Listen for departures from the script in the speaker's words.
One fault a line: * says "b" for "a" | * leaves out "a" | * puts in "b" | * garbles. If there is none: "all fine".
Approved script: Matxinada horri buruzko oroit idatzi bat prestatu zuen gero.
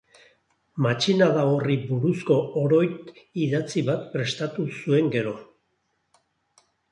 all fine